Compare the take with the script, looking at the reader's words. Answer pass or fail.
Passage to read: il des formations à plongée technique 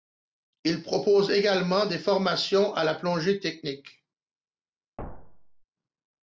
fail